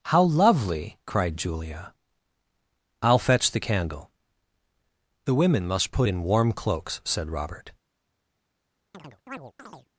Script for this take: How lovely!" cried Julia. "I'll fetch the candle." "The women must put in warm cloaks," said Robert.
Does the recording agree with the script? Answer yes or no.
yes